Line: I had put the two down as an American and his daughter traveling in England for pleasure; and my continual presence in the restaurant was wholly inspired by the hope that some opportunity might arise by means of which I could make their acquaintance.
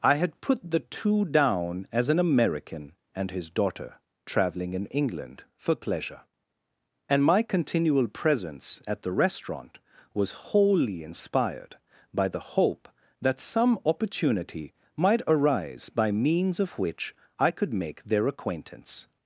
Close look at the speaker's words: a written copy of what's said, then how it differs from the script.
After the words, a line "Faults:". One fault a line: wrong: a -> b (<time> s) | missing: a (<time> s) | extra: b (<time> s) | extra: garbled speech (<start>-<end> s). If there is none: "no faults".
I had put the two down as an American and his daughter traveling in England for pleasure; and my continual presence at the restaurant was wholly inspired by the hope that some opportunity might arise by means of which I could make their acquaintance.
Faults:
wrong: in -> at (8.9 s)